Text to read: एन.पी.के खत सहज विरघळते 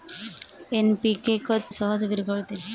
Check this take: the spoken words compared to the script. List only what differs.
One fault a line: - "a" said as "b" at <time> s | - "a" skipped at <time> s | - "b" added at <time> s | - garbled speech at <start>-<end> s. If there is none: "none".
none